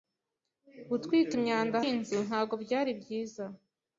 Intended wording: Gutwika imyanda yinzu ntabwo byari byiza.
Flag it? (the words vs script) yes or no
no